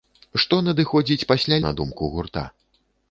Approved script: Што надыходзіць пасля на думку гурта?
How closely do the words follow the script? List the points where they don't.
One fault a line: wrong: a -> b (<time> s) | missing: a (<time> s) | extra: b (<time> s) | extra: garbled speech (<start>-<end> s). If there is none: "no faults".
no faults